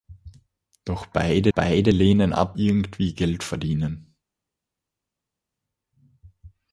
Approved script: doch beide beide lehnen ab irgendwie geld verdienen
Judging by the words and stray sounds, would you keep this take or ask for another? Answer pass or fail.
pass